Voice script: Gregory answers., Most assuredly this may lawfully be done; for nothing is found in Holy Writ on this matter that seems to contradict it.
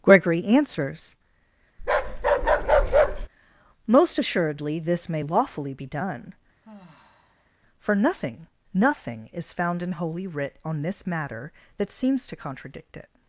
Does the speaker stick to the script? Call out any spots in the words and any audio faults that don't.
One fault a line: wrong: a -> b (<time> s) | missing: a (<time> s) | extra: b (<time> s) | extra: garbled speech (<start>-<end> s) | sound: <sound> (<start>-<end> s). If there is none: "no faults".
sound: bark (1.8-3.3 s)
sound: sigh (6.6-7.5 s)
extra: nothing (8.8 s)